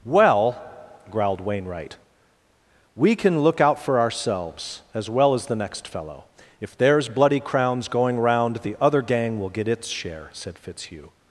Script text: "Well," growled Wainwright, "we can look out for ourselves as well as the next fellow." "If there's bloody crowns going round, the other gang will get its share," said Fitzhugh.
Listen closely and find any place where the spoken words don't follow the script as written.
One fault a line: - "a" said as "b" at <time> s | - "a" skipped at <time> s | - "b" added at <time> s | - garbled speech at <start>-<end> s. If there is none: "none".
none